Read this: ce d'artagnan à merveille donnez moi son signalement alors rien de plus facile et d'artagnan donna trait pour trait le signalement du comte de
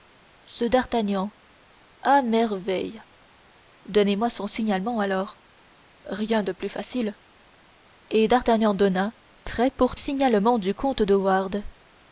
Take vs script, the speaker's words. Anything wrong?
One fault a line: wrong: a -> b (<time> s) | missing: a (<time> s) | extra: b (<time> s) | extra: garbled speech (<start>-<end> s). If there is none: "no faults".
missing: trait le (10.0 s)